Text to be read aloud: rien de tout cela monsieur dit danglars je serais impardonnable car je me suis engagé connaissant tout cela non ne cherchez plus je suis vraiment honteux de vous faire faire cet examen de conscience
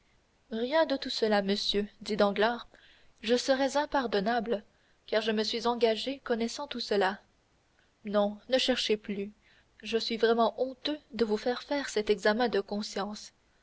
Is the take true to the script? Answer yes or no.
yes